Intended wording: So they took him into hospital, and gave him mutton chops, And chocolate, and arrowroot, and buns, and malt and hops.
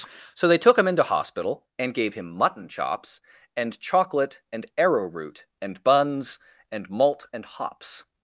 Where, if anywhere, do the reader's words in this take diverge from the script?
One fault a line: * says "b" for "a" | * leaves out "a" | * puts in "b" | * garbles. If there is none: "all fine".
all fine